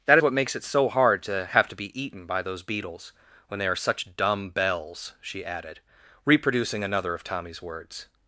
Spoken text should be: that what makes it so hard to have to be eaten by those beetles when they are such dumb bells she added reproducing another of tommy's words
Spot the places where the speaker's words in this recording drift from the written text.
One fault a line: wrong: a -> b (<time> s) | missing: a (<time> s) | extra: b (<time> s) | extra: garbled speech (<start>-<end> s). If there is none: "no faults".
no faults